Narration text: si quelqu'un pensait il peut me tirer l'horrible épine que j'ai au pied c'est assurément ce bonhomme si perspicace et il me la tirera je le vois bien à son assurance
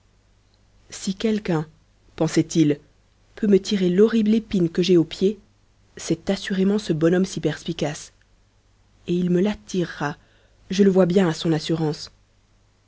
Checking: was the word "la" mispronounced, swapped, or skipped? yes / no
no